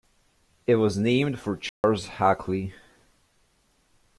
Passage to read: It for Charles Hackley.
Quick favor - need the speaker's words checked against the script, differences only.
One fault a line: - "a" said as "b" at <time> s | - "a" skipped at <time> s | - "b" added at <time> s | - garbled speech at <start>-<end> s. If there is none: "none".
- "was named" added at 0.8 s